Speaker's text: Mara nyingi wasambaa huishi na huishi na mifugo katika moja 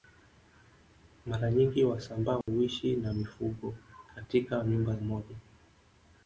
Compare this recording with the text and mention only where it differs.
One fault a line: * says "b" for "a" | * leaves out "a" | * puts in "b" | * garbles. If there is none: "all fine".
* leaves out "huishi na"
* puts in "nyumba"